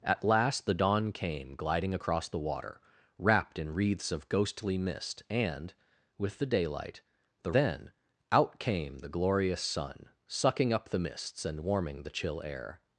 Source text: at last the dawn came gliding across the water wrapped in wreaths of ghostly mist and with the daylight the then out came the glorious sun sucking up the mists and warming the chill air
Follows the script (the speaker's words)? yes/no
yes